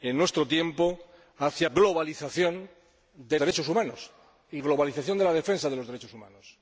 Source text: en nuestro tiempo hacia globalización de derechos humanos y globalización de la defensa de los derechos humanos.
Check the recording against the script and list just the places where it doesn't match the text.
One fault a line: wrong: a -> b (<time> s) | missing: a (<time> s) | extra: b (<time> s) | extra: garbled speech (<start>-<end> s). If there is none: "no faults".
no faults